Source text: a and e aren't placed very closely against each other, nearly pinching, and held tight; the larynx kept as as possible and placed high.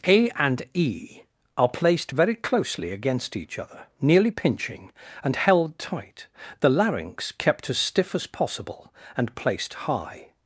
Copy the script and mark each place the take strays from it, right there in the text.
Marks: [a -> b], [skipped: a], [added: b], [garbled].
a and e [aren't -> are] placed very closely against each other, nearly pinching, and held tight; the larynx kept as [added: stiff] as possible and placed high.